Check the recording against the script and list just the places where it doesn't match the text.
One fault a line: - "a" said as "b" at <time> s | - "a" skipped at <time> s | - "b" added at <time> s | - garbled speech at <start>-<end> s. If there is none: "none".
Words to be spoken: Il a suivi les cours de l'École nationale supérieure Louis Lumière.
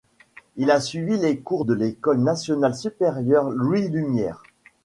none